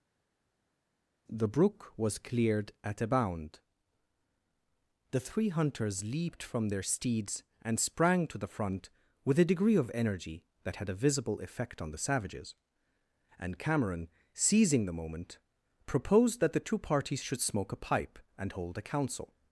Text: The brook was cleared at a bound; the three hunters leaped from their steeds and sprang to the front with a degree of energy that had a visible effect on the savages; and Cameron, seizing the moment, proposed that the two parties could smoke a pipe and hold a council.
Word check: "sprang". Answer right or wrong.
right